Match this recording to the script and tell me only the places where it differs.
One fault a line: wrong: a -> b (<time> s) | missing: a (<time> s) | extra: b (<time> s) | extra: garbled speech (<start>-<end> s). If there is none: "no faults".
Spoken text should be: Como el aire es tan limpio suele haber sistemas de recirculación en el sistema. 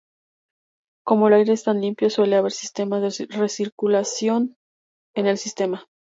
no faults